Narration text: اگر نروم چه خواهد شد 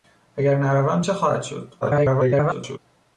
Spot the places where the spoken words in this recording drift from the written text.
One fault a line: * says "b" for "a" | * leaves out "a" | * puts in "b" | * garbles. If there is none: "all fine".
* garbles